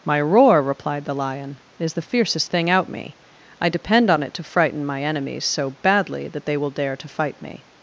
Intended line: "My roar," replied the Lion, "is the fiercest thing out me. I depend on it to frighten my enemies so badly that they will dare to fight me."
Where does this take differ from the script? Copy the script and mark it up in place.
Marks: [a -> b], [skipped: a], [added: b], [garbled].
"My roar," replied the Lion, "is the fiercest thing out me. I depend on it to frighten my enemies so badly that they will dare to fight me."